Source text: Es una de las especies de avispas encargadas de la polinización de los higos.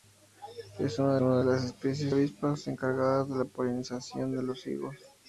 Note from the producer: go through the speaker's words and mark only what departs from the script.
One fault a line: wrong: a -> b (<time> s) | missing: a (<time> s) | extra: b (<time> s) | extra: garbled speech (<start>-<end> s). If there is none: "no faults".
extra: una (1.2 s)
missing: de (2.1 s)